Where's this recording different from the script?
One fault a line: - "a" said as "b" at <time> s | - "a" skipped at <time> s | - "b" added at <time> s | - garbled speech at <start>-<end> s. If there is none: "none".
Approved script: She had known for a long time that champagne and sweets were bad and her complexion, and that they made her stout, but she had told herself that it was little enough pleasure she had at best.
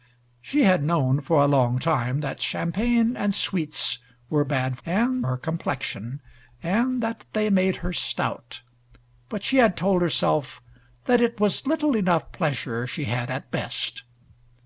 none